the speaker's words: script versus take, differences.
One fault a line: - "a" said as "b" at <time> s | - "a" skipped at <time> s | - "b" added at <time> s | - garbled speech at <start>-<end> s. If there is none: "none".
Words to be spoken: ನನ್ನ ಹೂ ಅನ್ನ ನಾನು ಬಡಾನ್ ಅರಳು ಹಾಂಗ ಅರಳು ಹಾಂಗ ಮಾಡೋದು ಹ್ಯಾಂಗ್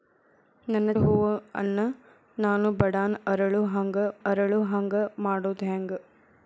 none